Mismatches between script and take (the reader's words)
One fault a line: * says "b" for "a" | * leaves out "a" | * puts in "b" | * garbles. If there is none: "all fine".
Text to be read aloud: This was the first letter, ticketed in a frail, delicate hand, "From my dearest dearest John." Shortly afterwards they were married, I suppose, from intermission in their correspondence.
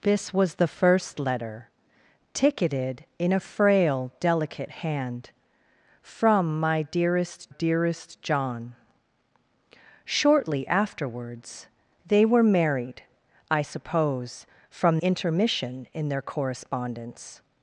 all fine